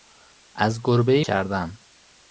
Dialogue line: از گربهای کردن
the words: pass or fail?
pass